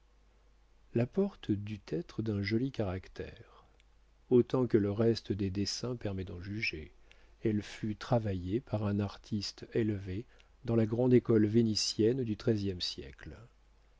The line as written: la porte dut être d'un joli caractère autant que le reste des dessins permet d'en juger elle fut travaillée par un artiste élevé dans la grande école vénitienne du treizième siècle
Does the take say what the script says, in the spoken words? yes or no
yes